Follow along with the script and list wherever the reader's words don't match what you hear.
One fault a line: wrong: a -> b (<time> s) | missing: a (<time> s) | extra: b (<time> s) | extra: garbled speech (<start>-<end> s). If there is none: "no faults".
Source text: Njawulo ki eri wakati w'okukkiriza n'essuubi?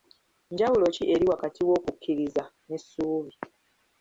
no faults